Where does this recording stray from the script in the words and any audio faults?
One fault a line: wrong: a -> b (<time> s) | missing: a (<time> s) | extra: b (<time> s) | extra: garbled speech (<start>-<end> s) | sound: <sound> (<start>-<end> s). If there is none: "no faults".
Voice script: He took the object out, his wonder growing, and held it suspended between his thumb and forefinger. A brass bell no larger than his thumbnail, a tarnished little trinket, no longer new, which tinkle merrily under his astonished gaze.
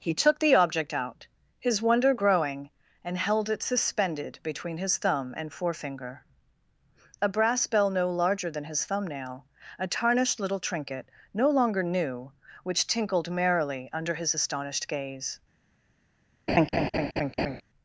wrong: tinkle -> tinkled (12.9 s)
sound: laugh (16.5-17.6 s)